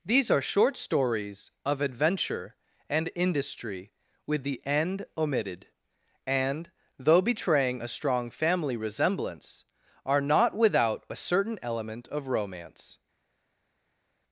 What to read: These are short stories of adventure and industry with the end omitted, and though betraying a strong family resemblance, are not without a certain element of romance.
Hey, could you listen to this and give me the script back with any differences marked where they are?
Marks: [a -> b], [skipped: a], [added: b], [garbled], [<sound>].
These are short stories of adventure and industry with the end omitted, and though betraying a strong family resemblance, are not without a certain element of romance.